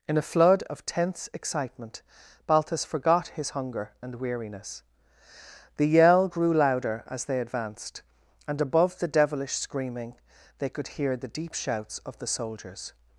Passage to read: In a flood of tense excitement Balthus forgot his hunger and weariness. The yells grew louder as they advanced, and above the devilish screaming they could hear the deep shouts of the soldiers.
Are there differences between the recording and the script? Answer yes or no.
yes